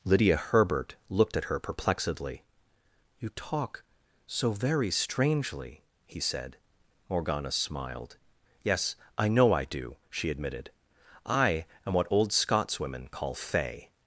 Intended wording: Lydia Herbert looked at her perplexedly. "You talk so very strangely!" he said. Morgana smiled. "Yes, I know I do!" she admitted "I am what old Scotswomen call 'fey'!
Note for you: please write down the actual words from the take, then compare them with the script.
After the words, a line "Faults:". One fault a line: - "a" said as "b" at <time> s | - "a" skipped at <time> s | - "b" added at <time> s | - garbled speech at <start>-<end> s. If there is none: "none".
Lydia Herbert looked at her perplexedly. "You talk so very strangely!" he said. Morgana smiled. "Yes, I know I do!" she admitted "I am what old Scotswomen call 'fey'!
Faults:
none